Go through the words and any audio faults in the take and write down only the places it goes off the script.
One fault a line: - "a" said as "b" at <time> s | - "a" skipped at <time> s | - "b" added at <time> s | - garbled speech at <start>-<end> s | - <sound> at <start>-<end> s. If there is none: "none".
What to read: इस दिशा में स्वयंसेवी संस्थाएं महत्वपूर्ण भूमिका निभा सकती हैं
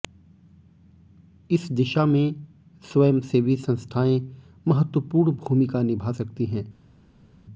none